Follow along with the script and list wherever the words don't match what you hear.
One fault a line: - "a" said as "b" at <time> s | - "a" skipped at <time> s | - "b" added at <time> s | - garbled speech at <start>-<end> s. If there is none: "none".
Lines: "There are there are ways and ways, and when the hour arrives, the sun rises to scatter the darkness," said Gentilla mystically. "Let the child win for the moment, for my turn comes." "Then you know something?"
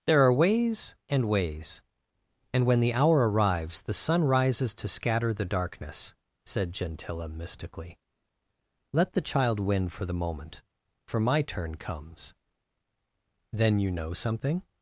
- "there are" skipped at 0.3 s